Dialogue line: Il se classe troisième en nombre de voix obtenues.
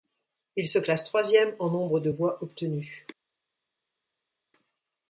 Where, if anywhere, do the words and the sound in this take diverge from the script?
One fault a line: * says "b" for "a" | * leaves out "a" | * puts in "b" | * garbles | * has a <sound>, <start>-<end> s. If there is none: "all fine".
all fine